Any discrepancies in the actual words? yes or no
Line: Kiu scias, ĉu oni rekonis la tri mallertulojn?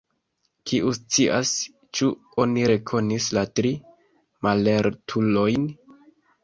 no